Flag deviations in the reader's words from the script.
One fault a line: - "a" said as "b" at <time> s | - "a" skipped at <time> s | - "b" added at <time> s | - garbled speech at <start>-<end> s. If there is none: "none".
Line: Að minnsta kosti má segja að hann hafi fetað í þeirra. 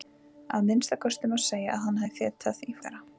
none